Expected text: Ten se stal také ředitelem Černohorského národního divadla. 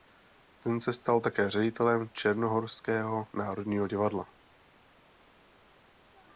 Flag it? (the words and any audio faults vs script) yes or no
no